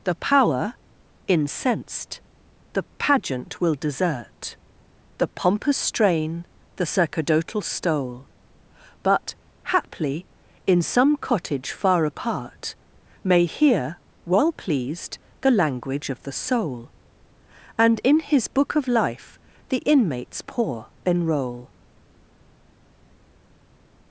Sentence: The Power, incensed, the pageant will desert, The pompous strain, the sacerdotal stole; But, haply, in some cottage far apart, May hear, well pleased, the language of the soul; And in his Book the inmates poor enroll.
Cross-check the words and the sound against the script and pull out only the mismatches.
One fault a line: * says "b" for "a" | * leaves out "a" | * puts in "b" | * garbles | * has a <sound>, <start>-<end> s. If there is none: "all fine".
* puts in "of Life"